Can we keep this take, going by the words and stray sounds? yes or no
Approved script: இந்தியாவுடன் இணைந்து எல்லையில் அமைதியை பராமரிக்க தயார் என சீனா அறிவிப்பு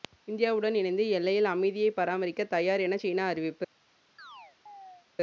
no